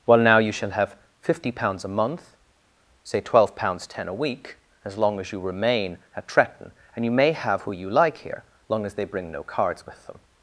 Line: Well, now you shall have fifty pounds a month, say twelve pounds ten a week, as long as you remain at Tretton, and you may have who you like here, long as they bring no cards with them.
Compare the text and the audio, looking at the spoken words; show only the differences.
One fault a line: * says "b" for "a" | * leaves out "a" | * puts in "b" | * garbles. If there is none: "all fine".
all fine